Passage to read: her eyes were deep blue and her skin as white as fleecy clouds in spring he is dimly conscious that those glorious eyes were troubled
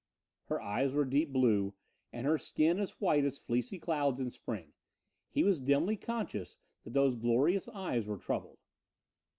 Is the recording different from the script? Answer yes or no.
yes